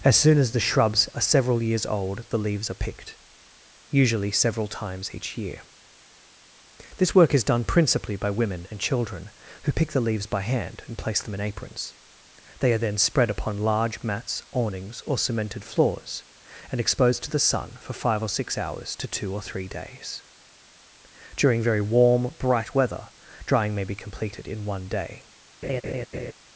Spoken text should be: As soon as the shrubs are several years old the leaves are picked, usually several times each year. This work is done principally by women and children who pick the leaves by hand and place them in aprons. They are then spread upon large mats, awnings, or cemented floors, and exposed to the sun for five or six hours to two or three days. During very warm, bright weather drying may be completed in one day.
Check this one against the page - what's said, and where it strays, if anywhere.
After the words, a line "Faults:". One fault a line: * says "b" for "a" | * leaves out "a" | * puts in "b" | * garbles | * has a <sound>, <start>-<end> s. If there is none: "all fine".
As soon as the shrubs are several years old the leaves are picked, usually several times each year. This work is done principally by women and children who pick the leaves by hand and place them in aprons. They are then spread upon large mats, awnings, or cemented floors, and exposed to the sun for five or six hours to two or three days. During very warm, bright weather drying may be completed in one day.
Faults:
* has a laugh, 25.6-26.3 s